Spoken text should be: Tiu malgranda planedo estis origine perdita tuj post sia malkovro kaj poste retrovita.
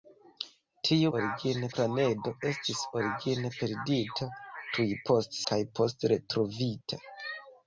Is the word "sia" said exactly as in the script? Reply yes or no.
no